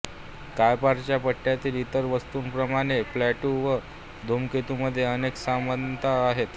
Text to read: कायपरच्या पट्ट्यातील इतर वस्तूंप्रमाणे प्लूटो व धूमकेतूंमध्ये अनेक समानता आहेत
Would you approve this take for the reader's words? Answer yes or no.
yes